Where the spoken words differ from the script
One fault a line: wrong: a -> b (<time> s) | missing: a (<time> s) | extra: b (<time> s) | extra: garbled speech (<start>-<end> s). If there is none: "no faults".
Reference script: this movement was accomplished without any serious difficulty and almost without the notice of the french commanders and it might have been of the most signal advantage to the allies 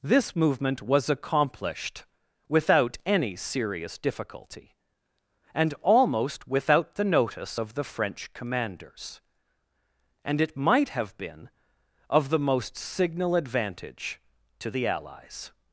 no faults